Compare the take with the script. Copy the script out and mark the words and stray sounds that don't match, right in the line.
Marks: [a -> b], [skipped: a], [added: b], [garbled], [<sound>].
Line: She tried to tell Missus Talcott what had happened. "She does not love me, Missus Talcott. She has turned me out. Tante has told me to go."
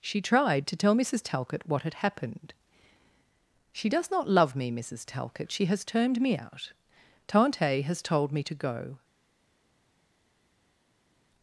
She tried to tell Missus Talcott what had happened. "She does not love me, Missus Talcott. She has turned me out. Tante has told me to go."